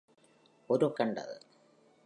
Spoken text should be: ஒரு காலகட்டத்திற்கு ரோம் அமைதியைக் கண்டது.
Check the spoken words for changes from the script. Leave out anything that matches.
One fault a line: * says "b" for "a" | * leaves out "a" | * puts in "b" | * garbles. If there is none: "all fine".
* leaves out "காலகட்டத்திற்கு ரோம் அமைதியைக்"